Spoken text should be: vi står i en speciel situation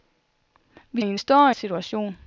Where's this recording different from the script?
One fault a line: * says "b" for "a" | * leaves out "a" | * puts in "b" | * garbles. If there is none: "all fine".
* leaves out "står"
* says "står" for "speciel"